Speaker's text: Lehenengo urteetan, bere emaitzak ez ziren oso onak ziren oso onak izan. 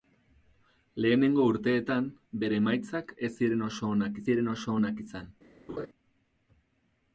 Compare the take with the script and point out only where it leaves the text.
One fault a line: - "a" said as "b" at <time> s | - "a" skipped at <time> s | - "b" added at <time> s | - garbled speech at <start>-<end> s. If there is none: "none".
none